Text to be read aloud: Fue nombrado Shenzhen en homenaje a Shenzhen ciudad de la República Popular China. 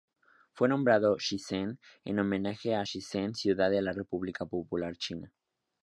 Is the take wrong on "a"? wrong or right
right